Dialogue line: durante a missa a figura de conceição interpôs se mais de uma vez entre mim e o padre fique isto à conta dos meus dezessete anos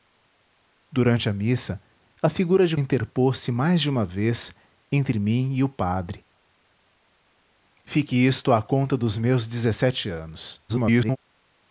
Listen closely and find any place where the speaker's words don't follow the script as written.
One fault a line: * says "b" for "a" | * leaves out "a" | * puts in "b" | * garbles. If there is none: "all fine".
* leaves out "conceição"
* garbles